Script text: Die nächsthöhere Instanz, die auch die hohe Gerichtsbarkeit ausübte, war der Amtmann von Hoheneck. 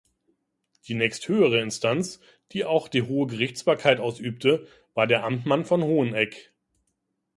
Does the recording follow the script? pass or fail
pass